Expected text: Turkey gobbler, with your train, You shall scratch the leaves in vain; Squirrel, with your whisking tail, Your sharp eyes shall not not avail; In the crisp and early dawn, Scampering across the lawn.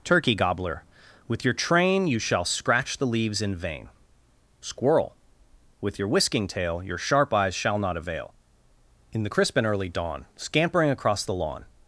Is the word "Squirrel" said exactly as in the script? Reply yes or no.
yes